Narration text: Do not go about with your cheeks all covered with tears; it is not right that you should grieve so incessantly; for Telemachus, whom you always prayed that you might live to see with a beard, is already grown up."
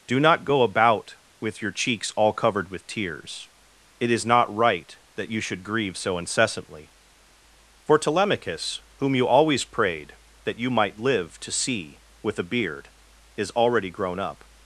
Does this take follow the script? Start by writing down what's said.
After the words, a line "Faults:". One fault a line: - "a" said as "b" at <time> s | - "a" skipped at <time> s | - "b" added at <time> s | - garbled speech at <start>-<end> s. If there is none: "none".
Do not go about with your cheeks all covered with tears; it is not right that you should grieve so incessantly; for Telemachus, whom you always prayed that you might live to see with a beard, is already grown up."
Faults:
none